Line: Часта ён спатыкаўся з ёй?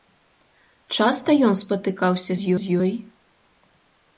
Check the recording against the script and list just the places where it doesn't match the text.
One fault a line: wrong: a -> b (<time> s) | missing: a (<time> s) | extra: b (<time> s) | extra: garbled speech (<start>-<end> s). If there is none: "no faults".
extra: з (2.6 s)